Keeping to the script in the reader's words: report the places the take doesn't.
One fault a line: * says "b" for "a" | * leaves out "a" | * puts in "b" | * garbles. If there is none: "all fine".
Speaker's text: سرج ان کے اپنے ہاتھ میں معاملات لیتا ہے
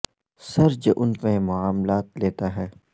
* leaves out "کے اپنے ہاتھ"